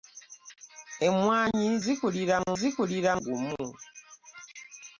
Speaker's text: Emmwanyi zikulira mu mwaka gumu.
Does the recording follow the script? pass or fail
fail